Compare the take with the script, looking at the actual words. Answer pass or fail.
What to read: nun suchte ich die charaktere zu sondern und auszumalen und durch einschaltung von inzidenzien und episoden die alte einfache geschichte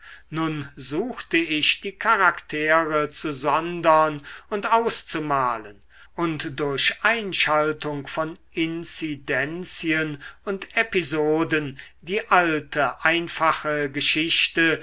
pass